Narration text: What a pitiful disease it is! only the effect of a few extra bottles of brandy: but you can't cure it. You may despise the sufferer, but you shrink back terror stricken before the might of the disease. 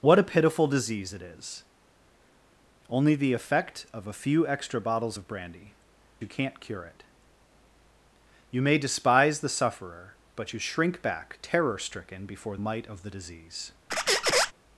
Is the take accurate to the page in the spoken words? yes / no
no